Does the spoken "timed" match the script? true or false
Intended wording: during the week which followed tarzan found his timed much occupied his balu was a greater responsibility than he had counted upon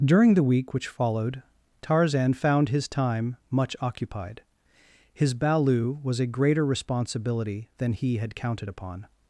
false